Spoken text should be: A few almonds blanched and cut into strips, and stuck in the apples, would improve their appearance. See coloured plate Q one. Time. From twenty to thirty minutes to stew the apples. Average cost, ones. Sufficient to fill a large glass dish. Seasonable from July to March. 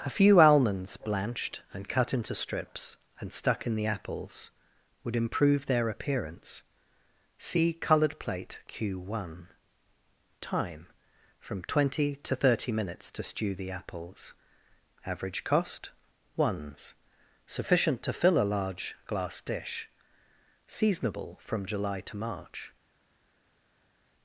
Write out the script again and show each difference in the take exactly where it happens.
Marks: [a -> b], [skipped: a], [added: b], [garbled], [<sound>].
A few almonds blanched and cut into strips, and stuck in the apples, would improve their appearance. See coloured plate Q one. Time. From twenty to thirty minutes to stew the apples. Average cost, ones. Sufficient to fill a large glass dish. Seasonable from July to March.